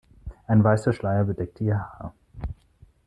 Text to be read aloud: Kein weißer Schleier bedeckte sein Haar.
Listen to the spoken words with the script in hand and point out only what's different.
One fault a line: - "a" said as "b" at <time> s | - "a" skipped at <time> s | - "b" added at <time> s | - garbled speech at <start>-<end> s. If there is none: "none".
- "Kein" said as "Ein" at 0.5 s
- "sein" said as "ihr" at 1.6 s